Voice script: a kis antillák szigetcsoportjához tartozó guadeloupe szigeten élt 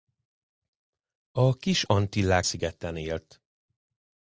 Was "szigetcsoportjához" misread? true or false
true